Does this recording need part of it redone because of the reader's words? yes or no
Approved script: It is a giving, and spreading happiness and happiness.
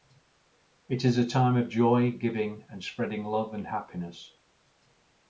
yes